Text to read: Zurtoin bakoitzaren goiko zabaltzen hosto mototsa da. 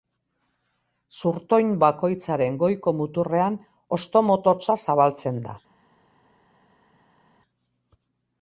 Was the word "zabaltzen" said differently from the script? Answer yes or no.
yes